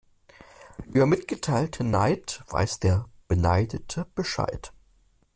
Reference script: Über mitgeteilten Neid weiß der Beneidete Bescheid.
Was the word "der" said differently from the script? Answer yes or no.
no